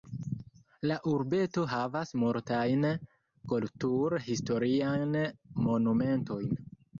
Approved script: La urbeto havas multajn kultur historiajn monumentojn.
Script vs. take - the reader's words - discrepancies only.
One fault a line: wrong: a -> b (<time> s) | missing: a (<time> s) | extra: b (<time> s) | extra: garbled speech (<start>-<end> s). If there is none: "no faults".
no faults